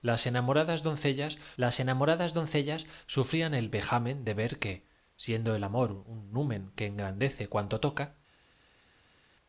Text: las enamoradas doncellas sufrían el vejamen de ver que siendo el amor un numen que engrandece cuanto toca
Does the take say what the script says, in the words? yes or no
no